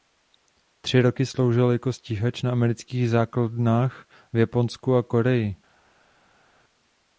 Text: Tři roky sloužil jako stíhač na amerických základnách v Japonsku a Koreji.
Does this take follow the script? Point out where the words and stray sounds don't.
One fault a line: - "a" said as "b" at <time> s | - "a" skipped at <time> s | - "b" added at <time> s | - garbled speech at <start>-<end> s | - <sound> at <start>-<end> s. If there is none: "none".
none